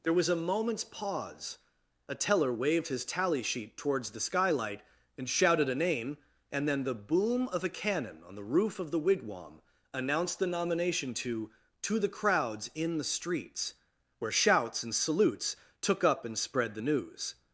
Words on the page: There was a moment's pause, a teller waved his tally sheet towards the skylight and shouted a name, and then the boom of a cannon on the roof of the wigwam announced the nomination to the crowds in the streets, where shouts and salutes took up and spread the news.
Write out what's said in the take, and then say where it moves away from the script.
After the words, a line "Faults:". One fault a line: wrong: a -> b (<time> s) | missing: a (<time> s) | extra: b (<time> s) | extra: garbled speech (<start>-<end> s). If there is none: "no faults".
There was a moment's pause, a teller waved his tally sheet towards the skylight and shouted a name, and then the boom of a cannon on the roof of the wigwam announced the nomination to to the crowds in the streets, where shouts and salutes took up and spread the news.
Faults:
extra: to (11.8 s)